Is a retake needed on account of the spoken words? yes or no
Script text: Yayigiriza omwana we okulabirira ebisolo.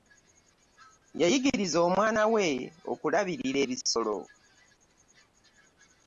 no